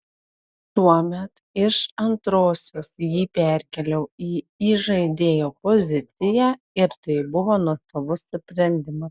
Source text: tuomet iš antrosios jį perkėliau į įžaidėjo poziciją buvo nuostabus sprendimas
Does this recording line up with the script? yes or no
no